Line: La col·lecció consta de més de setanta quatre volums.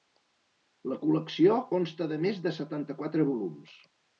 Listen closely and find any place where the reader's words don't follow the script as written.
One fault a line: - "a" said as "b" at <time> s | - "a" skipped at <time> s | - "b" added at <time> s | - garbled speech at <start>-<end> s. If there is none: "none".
none